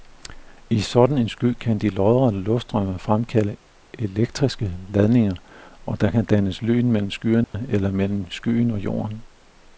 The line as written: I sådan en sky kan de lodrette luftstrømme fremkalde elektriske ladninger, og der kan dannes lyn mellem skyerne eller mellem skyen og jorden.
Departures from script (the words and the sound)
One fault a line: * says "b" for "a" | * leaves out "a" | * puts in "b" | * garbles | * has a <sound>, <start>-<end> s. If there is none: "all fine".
* has a dropout, 7.4-7.5 s